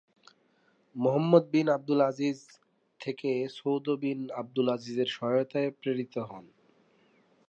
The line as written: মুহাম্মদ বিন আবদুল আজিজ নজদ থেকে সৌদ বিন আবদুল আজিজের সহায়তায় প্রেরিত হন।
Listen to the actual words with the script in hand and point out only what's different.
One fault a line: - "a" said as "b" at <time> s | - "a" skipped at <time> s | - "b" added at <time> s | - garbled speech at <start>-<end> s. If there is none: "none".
- "নজদ" skipped at 2.4 s